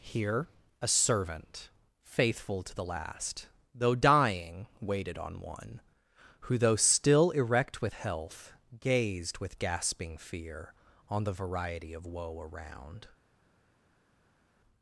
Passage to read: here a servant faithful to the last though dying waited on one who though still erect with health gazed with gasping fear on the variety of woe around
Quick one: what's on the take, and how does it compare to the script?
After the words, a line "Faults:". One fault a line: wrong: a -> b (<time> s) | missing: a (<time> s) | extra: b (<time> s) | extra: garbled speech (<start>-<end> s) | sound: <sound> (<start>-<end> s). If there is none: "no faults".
here a servant faithful to the last though dying waited on one who though still erect with health gazed with gasping fear on the variety of woe around
Faults:
no faults